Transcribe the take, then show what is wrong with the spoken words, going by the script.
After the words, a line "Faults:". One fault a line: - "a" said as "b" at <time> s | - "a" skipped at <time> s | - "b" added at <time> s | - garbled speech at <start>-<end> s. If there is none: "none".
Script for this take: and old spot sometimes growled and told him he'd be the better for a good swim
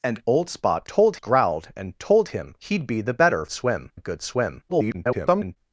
and old spot told growled and told him he'd be the better swim a good swim [garbled]
Faults:
- "sometimes" said as "told" at 0.8 s
- "for" said as "swim" at 3.5 s
- garbled speech at 4.7-5.6 s